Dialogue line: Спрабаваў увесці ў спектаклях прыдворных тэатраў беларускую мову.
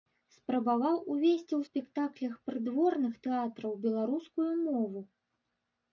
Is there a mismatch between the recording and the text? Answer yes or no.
no